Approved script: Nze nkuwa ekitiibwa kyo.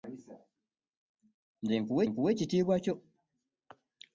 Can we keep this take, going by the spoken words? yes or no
no